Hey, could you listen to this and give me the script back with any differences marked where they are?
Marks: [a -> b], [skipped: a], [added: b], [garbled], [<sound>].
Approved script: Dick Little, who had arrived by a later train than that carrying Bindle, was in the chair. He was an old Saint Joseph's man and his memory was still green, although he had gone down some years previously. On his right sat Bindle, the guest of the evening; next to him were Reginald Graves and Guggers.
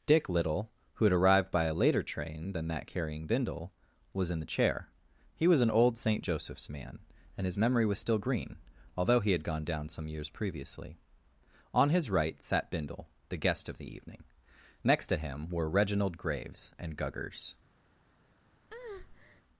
Dick Little, who had arrived by a later train than that carrying Bindle, was in the chair. He was an old Saint Joseph's man and his memory was still green, although he had gone down some years previously. On his right sat Bindle, the guest of the evening; next to him were Reginald Graves and Guggers. [breath]